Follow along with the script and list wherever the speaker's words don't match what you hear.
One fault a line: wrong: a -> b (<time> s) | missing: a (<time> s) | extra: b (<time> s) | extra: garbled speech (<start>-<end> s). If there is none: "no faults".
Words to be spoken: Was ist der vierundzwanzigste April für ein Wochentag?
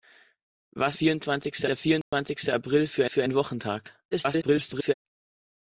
wrong: ist -> vierundzwanzigste (0.9 s)
extra: für (3.1 s)
extra: garbled speech (4.1-4.9 s)